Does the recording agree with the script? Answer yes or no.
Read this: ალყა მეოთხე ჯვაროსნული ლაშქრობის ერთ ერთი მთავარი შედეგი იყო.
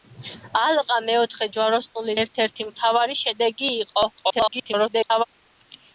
no